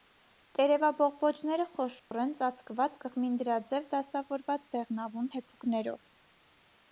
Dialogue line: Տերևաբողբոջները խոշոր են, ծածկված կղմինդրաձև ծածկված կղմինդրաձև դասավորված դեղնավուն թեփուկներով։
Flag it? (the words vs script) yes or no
yes